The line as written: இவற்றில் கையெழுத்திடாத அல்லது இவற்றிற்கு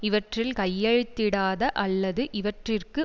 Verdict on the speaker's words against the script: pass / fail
pass